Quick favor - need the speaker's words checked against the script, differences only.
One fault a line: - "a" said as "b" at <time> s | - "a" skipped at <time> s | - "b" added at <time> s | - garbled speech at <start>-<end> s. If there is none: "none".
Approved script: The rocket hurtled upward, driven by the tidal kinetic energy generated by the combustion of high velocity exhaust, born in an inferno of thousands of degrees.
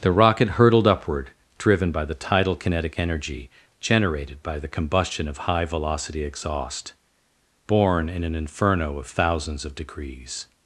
none